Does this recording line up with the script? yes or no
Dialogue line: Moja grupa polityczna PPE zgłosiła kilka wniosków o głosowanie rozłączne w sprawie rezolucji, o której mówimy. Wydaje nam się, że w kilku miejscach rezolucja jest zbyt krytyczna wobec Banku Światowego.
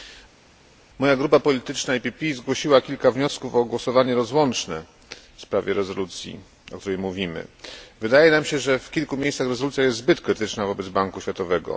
yes